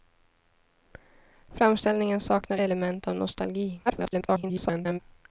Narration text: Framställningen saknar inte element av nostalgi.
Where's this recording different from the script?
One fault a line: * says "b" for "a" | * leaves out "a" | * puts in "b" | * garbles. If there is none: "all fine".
* leaves out "inte"
* garbles